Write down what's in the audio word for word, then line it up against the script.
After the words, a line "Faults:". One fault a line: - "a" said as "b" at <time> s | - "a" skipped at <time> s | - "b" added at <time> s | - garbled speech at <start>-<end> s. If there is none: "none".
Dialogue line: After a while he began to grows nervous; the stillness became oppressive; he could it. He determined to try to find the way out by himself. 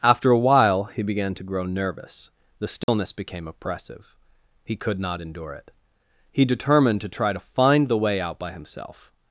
After a while he began to grow nervous; the stillness became oppressive; he could not endure it. He determined to try to find the way out by himself.
Faults:
- "grows" said as "grow" at 1.4 s
- "not endure" added at 5.0 s